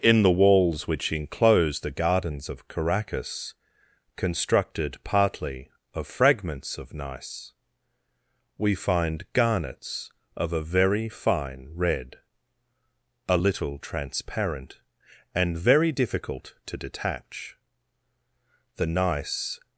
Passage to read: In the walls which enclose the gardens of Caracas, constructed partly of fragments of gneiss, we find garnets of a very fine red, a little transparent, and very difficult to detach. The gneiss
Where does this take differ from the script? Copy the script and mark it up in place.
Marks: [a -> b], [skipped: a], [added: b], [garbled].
In the walls which enclose the gardens of Caracas, constructed partly of fragments of gneiss, we find garnets of a very fine red, a little transparent, and very difficult to detach. The gneiss